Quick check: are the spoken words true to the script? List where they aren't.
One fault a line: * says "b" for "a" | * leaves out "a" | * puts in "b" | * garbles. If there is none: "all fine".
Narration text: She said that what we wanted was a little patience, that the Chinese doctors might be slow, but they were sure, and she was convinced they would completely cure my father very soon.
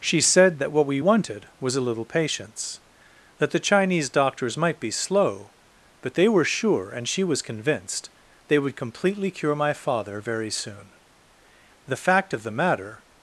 * puts in "The fact of the matter"